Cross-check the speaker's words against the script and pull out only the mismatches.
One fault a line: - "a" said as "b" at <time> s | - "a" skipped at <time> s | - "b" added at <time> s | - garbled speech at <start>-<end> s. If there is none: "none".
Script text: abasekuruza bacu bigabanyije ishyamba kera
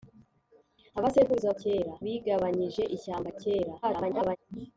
- "bacu" said as "kera" at 1.6 s
- garbled speech at 3.8-4.4 s